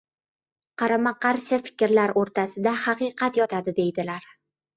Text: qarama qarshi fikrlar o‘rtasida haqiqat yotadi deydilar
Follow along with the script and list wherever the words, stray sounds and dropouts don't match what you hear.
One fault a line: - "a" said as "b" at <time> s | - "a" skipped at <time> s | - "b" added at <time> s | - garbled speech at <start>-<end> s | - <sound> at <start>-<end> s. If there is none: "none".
none